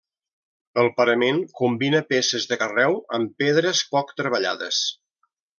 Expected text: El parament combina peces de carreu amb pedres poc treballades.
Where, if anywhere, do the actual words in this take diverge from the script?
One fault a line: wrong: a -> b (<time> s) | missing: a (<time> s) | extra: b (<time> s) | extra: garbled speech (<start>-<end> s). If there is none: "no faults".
no faults